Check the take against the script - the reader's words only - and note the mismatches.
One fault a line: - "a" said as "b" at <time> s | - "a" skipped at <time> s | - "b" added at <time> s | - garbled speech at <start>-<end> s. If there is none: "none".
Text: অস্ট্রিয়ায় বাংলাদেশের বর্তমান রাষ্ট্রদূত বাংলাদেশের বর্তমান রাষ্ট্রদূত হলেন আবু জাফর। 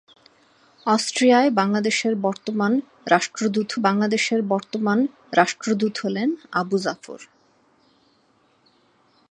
none